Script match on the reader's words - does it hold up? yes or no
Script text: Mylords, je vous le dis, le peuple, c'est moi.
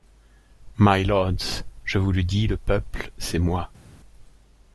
yes